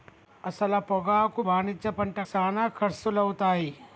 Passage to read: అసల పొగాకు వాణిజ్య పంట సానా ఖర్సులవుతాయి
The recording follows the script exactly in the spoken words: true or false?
true